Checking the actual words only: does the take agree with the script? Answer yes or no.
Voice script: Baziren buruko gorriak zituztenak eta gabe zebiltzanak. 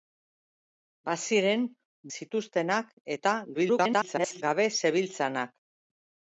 no